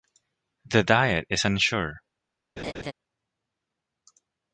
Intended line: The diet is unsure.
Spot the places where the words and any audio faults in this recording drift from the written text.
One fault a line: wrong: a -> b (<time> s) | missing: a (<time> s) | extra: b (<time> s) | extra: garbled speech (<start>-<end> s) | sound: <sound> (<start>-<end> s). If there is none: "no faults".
sound: laugh (2.6-2.9 s)